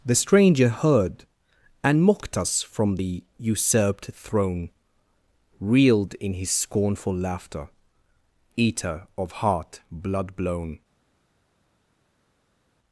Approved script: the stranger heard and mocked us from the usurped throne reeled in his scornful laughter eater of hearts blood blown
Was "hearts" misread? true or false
true